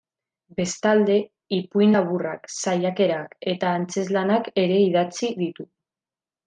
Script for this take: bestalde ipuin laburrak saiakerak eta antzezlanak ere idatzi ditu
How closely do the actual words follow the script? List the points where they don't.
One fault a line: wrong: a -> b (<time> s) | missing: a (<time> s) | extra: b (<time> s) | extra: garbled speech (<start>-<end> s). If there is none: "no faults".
no faults